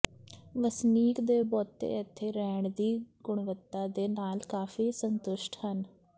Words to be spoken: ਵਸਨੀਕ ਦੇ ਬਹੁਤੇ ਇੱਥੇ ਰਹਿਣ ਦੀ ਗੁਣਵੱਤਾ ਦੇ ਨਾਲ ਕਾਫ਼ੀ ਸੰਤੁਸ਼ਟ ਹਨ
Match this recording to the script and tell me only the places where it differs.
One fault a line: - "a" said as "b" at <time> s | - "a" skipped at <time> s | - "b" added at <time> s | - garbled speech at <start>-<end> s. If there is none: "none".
none